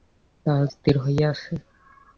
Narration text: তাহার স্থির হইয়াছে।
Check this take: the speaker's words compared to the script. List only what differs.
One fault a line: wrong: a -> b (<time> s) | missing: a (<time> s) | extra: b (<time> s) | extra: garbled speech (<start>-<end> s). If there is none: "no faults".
no faults